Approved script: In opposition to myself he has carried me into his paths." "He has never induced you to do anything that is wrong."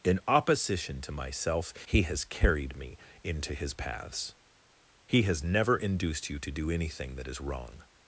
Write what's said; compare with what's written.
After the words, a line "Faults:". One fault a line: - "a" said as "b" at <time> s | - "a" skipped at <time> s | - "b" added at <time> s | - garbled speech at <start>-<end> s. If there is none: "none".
In opposition to myself he has carried me into his paths." "He has never induced you to do anything that is wrong."
Faults:
none